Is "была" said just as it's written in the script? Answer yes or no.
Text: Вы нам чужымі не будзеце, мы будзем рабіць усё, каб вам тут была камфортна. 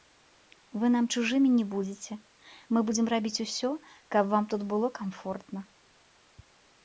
no